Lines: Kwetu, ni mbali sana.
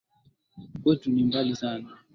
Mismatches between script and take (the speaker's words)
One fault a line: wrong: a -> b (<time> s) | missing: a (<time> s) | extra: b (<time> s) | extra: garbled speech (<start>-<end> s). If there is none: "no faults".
no faults